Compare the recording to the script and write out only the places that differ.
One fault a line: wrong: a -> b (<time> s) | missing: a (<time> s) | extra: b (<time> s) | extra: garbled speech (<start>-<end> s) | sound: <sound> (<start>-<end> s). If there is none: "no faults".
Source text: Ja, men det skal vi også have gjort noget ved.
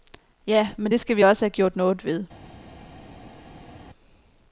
no faults